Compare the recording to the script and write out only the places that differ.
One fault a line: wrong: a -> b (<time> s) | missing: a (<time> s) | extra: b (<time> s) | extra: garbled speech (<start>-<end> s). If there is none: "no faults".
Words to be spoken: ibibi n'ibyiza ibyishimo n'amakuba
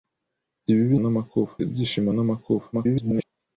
wrong: n'ibyiza -> n'amakuba (1.0 s)
extra: garbled speech (2.7-3.2 s)